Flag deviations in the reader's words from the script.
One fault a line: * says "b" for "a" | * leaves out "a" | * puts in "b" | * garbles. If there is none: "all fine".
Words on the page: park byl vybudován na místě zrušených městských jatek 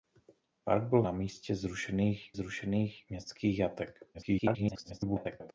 * leaves out "vybudován"
* puts in "zrušených"
* garbles